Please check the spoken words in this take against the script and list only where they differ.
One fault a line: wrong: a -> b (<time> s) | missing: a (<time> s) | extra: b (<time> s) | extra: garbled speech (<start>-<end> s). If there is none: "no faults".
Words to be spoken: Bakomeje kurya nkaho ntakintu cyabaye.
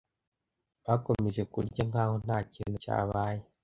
no faults